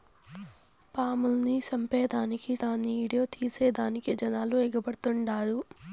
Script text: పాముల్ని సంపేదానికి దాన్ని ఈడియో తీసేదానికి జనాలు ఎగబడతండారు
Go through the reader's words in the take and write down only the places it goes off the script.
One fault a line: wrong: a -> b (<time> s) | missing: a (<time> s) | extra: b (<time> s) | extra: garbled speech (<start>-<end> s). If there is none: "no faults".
no faults